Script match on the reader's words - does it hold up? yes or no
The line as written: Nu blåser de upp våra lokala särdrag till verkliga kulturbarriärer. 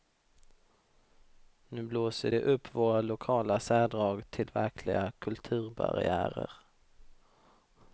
yes